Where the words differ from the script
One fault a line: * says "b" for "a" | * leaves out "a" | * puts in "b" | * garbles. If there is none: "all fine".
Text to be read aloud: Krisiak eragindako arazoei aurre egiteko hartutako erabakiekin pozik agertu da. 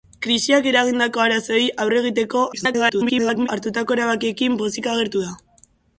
* garbles